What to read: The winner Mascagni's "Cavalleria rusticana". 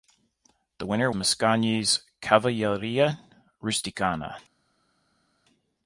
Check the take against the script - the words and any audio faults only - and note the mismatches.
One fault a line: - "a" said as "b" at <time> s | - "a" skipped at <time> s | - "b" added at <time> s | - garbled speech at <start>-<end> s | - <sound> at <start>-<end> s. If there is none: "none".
none